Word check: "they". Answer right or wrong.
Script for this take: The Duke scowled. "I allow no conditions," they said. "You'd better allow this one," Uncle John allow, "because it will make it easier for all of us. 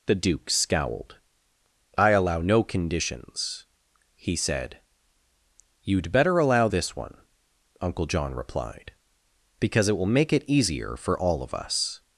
wrong